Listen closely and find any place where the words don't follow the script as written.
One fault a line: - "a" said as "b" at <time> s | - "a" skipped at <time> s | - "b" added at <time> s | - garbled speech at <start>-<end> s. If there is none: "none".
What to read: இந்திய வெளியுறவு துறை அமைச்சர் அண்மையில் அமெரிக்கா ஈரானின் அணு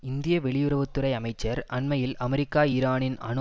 none